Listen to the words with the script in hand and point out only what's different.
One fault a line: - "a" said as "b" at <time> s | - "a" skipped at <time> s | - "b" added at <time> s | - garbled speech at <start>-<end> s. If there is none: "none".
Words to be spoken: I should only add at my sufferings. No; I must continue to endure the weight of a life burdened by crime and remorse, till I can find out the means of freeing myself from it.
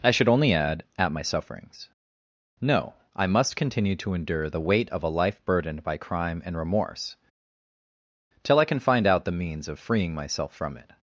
none